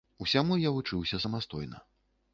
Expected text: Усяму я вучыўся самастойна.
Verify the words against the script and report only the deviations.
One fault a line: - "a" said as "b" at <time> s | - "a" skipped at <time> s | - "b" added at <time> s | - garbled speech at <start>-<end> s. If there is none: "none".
none